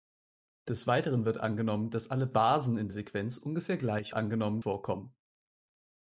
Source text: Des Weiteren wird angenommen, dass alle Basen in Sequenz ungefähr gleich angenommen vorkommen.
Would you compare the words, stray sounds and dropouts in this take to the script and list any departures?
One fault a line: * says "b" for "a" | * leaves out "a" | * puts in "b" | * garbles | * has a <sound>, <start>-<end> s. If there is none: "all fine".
all fine